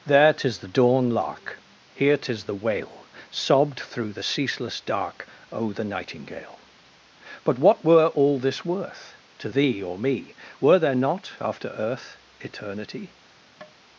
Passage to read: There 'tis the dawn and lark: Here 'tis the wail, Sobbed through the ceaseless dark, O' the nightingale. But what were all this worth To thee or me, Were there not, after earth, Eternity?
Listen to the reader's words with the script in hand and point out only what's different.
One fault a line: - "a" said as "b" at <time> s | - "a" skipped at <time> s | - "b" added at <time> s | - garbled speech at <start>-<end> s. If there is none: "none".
- "and" skipped at 1.1 s